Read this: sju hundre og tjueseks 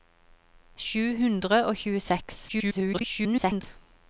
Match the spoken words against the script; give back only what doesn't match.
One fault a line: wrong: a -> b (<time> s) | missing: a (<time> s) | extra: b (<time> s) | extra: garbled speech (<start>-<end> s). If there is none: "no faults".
extra: garbled speech (2.5-3.6 s)